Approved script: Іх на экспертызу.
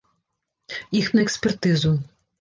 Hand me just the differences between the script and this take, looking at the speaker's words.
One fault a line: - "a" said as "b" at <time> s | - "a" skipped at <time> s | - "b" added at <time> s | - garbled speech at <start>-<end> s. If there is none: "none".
none